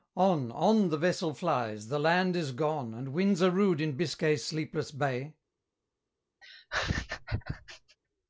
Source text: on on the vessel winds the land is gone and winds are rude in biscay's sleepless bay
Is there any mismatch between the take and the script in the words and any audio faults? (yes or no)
yes